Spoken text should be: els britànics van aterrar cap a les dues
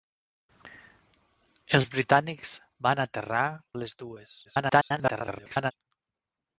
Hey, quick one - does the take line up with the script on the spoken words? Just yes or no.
no